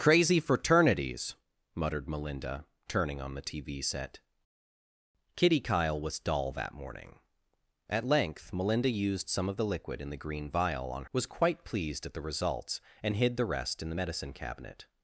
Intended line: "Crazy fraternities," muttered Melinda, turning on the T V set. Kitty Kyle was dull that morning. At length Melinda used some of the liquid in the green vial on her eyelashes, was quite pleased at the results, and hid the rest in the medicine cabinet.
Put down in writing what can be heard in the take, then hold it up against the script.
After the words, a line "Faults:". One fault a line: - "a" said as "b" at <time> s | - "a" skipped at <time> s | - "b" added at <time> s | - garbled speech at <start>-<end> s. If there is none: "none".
"Crazy fraternities," muttered Melinda, turning on the T V set. Kitty Kyle was dull that morning. At length Melinda used some of the liquid in the green vial on was quite pleased at the results, and hid the rest in the medicine cabinet.
Faults:
- "her eyelashes" skipped at 11.1 s